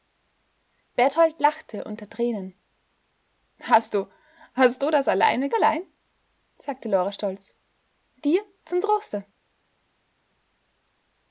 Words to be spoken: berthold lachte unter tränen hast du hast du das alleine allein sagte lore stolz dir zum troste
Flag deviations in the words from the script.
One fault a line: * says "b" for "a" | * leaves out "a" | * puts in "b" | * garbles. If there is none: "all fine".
all fine